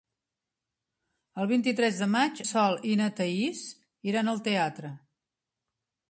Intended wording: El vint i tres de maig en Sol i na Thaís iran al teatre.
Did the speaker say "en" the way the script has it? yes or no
no